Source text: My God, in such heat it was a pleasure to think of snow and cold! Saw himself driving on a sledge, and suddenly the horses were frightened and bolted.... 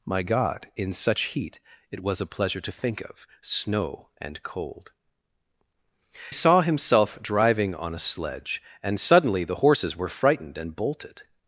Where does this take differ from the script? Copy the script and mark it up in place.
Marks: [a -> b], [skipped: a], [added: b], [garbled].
My God, in such heat it was a pleasure to think of snow and cold! Saw himself driving on a sledge, and suddenly the horses were frightened and bolted....